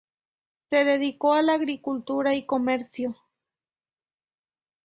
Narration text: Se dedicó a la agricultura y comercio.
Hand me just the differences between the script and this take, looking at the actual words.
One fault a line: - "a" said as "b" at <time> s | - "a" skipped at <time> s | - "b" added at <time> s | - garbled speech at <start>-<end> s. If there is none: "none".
none